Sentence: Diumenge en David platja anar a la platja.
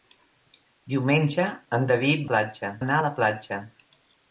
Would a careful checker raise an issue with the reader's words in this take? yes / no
no